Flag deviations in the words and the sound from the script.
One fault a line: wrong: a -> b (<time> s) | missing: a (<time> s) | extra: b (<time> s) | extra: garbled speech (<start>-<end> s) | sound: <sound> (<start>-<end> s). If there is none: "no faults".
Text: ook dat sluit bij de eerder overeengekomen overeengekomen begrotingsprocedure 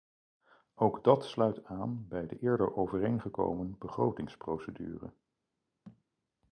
extra: aan (1.6 s)
missing: overeengekomen (3.7 s)
sound: thud (5.8-6.0 s)